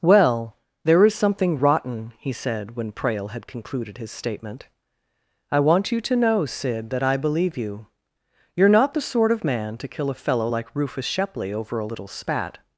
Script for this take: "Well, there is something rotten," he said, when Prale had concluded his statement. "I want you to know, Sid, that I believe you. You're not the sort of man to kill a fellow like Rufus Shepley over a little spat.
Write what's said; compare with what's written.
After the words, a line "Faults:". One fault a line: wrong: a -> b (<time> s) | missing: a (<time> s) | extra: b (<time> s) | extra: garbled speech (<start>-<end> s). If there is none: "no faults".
"Well, there is something rotten," he said, when Prale had concluded his statement. "I want you to know, Sid, that I believe you. You're not the sort of man to kill a fellow like Rufus Shepley over a little spat.
Faults:
no faults